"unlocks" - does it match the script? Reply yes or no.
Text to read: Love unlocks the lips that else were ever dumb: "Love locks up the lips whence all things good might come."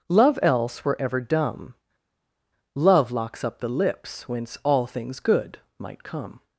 no